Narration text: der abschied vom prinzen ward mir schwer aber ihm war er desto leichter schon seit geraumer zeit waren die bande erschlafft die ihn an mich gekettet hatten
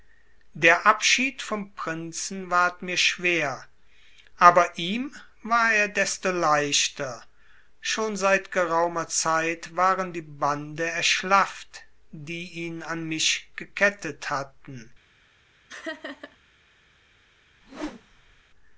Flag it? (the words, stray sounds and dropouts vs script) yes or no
yes